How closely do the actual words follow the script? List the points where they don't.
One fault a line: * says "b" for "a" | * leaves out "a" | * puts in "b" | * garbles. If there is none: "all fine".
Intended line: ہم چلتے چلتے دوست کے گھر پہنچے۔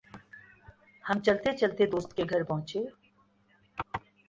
all fine